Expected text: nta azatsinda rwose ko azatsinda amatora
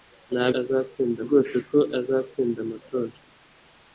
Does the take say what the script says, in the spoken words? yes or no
yes